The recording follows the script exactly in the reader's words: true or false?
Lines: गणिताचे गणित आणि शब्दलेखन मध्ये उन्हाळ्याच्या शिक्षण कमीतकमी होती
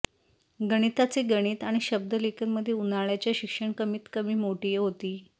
false